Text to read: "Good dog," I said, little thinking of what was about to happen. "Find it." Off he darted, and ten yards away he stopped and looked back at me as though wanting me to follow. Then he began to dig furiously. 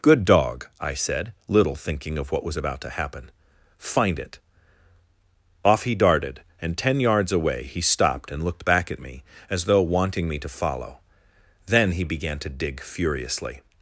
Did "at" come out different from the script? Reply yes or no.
no